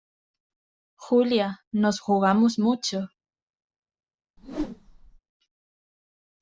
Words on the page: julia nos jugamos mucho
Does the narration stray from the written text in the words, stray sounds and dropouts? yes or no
yes